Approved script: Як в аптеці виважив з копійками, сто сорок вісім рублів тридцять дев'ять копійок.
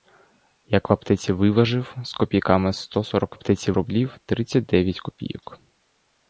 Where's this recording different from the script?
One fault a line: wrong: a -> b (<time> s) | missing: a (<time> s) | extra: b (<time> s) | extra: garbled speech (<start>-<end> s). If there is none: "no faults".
wrong: вісім -> аптеці (3.3 s)